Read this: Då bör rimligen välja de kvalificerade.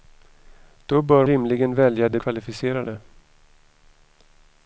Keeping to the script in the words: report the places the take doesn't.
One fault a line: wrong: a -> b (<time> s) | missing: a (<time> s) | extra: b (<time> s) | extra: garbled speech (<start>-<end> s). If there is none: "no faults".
no faults